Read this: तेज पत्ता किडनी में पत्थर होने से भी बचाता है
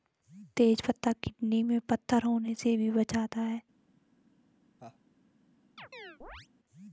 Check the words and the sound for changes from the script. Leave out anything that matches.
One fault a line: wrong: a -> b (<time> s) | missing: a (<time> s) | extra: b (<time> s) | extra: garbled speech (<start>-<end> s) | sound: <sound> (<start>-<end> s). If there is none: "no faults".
sound: laugh (4.8-5.0 s)
sound: chirp (5.8-6.5 s)